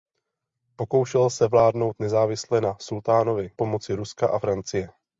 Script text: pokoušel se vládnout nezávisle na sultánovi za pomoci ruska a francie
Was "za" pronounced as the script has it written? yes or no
no